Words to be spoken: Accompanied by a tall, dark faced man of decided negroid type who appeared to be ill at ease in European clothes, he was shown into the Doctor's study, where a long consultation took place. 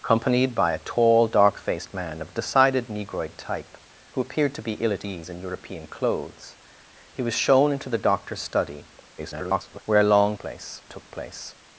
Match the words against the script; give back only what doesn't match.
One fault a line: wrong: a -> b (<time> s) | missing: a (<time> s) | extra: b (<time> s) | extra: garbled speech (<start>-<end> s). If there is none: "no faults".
extra: garbled speech (9.2-9.8 s)
wrong: consultation -> place (10.4 s)